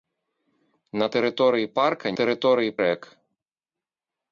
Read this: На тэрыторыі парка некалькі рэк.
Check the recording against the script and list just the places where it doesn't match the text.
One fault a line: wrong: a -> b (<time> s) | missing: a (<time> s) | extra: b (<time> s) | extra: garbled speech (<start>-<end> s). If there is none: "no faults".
wrong: некалькі -> тэрыторыі (2.2 s)